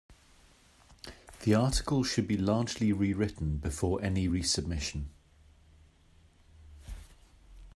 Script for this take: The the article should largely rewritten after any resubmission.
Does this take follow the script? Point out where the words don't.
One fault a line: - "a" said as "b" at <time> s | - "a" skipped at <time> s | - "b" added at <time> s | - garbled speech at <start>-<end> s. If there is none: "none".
- "the" skipped at 1.5 s
- "be" added at 2.3 s
- "after" said as "before" at 3.6 s